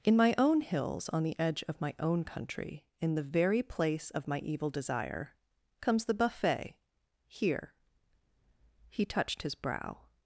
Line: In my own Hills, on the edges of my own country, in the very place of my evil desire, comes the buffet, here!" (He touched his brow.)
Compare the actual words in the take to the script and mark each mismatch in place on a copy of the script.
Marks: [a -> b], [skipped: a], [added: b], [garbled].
In my own Hills, on the [edges -> edge] of my own country, in the very place of my evil desire, comes the buffet, here!" (He touched his brow.)